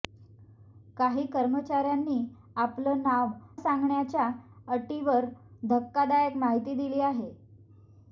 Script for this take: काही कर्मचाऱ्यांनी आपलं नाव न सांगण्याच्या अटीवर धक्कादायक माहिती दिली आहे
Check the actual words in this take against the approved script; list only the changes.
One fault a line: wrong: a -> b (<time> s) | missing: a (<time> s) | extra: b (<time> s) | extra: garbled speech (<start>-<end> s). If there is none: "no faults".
missing: न (3.3 s)